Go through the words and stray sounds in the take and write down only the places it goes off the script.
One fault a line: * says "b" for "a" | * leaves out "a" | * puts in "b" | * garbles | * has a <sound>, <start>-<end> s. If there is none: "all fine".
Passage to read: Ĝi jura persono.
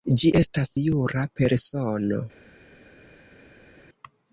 * puts in "estas"